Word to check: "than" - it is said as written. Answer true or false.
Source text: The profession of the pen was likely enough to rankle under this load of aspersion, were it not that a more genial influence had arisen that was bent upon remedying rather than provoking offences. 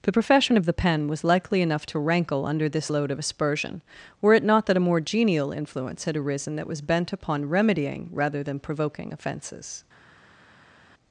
true